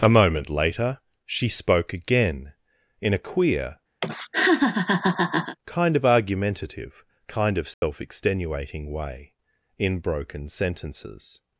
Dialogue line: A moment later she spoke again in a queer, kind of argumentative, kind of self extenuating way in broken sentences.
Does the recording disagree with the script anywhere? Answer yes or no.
no